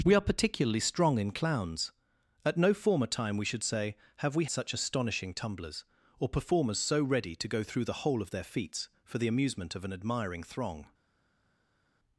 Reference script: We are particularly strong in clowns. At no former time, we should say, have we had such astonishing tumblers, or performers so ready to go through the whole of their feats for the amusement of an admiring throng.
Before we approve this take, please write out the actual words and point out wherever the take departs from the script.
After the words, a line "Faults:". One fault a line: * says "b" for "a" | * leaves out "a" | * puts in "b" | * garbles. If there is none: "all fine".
We are particularly strong in clowns. At no former time, we should say, have we such astonishing tumblers, or performers so ready to go through the whole of their feats for the amusement of an admiring throng.
Faults:
* leaves out "had"